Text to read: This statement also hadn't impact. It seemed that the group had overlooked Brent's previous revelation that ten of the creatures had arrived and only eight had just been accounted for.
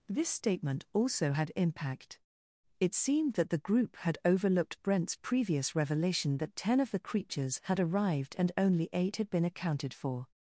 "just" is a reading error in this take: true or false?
true